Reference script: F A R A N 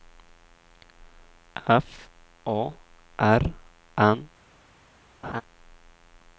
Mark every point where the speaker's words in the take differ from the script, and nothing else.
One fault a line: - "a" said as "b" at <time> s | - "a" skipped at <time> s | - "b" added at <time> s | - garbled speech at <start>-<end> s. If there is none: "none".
- "A" skipped at 3.4 s